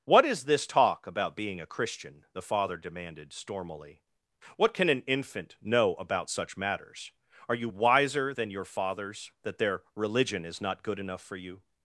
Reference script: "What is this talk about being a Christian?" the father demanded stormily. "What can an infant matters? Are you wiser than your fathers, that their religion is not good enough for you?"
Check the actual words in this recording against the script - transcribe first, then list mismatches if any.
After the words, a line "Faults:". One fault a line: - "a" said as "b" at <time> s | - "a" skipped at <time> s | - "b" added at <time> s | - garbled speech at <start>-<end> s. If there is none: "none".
"What is this talk about being a Christian?" the father demanded stormily. "What can an infant know about such matters? Are you wiser than your fathers, that their religion is not good enough for you?"
Faults:
- "know about such" added at 5.6 s